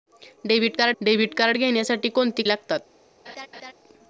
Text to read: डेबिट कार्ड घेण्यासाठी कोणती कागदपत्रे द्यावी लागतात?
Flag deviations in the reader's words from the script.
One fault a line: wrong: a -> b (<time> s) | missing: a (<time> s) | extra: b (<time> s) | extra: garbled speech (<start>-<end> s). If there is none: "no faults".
extra: डेबिट कार्ड (1.0 s)
missing: कागदपत्रे द्यावी (2.4 s)